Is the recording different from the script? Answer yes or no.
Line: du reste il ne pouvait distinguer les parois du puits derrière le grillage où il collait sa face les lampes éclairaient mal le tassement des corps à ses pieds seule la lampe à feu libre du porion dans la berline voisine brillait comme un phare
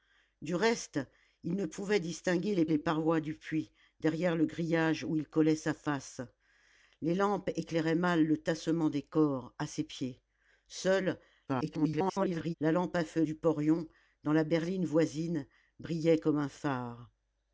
yes